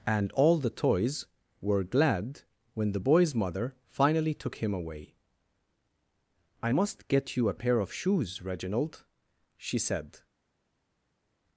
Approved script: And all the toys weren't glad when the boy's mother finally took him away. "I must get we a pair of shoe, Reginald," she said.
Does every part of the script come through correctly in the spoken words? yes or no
no